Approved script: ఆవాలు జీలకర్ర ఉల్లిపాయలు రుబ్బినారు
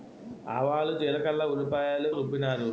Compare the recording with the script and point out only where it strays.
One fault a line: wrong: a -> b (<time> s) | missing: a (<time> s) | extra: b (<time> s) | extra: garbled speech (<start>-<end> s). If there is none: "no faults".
no faults